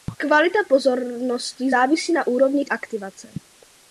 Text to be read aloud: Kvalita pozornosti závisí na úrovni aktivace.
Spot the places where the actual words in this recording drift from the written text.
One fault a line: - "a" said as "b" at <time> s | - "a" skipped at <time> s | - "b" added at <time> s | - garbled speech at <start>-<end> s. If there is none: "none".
none